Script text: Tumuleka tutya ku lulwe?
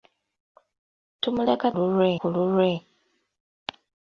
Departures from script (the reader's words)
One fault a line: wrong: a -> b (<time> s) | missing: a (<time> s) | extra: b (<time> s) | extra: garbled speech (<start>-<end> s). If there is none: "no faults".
wrong: tutya -> lulwe (1.7 s)